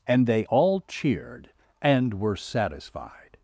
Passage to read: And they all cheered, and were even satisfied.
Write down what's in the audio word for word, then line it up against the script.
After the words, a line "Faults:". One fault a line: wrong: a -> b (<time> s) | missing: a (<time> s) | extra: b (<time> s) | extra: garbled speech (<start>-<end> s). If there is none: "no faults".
And they all cheered, and were satisfied.
Faults:
missing: even (2.4 s)